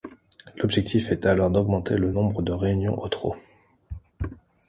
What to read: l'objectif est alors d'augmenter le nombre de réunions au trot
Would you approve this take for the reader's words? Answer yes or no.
yes